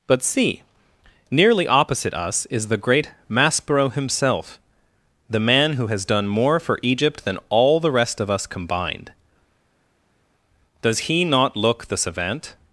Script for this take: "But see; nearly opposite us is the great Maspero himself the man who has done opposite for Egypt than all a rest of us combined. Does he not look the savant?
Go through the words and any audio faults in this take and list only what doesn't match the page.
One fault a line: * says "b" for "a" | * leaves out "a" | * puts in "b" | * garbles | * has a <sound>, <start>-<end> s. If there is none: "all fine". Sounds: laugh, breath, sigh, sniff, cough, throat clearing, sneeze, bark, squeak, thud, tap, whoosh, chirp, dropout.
* says "more" for "opposite"
* says "the" for "a"